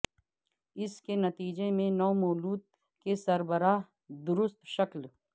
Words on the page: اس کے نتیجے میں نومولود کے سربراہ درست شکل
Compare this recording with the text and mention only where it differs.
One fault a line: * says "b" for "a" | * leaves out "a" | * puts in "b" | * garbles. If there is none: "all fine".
all fine